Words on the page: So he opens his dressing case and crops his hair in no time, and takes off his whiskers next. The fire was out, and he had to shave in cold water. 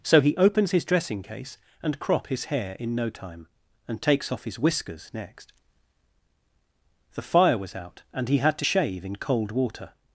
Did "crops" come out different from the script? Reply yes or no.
yes